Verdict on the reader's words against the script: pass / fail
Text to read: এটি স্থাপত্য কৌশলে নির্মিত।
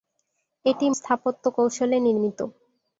pass